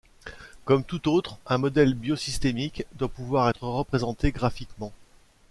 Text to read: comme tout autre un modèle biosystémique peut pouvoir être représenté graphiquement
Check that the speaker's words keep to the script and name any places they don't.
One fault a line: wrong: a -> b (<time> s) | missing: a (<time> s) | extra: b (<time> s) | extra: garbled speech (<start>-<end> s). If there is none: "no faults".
wrong: peut -> doit (3.0 s)